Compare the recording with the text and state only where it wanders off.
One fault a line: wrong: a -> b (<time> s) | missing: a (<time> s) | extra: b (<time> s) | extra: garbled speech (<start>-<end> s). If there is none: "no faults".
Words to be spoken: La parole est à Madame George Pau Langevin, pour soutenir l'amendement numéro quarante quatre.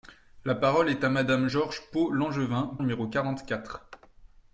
missing: pour soutenir l'amendement (2.8 s)